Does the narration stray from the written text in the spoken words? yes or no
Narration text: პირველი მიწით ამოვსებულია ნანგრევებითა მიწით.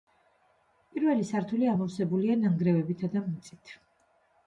yes